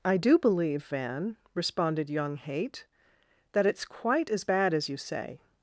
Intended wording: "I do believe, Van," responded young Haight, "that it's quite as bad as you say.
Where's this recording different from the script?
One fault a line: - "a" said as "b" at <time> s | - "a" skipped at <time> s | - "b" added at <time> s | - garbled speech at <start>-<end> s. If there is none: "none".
none